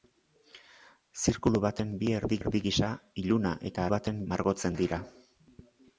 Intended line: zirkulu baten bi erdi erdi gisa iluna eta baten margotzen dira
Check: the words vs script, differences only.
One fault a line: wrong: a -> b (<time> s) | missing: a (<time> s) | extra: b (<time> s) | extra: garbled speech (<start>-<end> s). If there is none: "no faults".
no faults